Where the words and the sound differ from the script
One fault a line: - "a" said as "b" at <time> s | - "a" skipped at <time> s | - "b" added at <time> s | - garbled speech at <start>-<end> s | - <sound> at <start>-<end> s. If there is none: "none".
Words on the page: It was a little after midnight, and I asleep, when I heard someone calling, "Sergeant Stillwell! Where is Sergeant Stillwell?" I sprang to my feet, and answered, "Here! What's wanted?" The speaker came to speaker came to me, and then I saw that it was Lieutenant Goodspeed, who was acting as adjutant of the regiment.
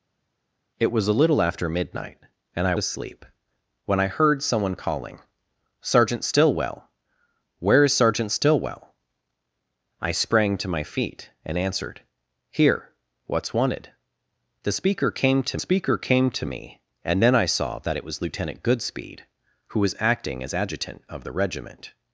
none